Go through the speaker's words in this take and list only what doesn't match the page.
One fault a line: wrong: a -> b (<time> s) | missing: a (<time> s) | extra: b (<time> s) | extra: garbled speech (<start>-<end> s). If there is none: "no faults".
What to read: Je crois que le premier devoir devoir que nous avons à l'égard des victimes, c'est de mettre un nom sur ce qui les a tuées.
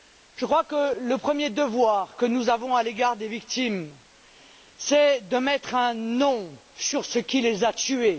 missing: devoir (2.1 s)